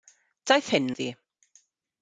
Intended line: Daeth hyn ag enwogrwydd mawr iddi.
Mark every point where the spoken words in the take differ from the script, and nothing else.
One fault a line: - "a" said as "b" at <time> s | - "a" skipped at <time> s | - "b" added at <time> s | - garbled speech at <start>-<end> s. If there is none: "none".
- "ag enwogrwydd mawr" skipped at 0.9 s